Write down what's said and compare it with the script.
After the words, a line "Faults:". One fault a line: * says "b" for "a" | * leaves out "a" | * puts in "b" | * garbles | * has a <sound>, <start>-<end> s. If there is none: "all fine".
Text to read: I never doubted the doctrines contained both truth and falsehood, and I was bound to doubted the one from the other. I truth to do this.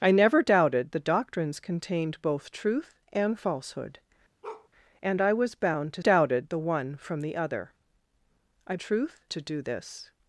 I never doubted the doctrines contained both truth and falsehood, and I was bound to doubted the one from the other. I truth to do this.
Faults:
* has a bark, 4.4-4.7 s